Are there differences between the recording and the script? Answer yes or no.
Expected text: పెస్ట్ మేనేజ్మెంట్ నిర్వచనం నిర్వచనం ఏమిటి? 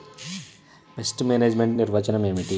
yes